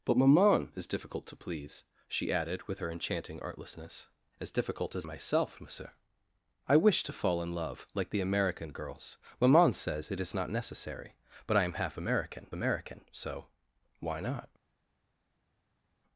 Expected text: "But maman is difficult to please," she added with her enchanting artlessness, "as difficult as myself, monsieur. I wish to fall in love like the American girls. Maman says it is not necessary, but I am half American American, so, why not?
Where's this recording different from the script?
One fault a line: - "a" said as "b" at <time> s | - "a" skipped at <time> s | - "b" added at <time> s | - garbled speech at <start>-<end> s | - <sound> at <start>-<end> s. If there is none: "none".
none